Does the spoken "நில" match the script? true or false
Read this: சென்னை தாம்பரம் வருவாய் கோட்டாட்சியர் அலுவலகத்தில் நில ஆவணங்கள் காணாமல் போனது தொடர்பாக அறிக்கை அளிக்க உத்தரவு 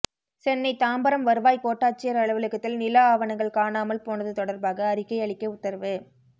true